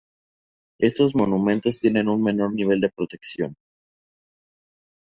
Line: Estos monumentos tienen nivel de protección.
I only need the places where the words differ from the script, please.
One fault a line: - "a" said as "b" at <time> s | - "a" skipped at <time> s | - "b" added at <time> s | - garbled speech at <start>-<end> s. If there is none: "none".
- "un menor" added at 2.1 s